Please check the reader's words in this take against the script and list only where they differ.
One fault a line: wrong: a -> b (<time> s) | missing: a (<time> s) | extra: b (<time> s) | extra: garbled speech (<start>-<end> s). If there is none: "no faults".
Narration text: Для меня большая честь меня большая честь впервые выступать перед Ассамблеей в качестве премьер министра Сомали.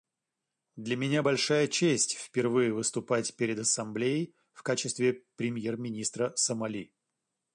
missing: меня большая честь (2.1 s)